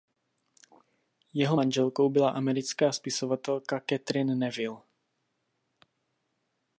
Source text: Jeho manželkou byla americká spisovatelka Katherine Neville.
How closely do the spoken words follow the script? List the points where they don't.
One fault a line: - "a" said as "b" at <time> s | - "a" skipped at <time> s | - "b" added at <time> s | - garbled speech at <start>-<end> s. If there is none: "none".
none